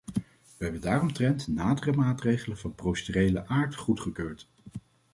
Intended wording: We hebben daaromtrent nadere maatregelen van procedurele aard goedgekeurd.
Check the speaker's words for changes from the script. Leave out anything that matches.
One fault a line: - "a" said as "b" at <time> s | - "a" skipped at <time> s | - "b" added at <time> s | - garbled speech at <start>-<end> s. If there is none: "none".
none